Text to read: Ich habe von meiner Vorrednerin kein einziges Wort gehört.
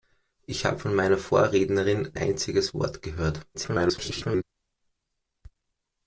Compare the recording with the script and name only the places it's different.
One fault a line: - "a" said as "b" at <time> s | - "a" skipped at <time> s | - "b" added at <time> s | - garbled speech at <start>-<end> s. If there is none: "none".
- "kein" skipped at 2.1 s
- garbled speech at 3.5-4.4 s